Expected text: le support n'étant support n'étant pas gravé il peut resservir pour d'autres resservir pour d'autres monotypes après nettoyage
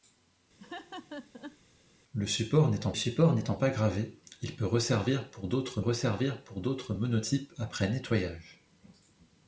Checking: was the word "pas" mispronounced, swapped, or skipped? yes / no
no